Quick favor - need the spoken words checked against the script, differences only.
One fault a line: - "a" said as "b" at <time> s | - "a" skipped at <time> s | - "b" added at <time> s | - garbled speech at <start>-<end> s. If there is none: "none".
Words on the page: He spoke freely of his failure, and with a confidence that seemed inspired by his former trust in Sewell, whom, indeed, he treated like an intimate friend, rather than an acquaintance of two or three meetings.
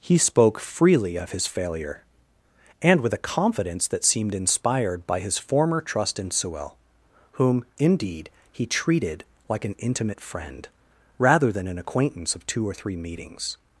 none